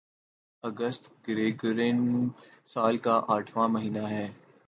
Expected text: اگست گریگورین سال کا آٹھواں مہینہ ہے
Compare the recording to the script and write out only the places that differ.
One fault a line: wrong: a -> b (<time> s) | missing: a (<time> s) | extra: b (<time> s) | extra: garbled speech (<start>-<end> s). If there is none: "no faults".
no faults